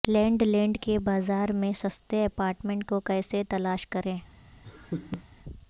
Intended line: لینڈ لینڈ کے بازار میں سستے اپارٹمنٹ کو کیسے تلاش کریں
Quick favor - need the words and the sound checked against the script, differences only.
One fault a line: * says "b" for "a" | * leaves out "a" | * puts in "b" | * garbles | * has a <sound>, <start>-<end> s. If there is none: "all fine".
* has a laugh, 4.6-5.2 s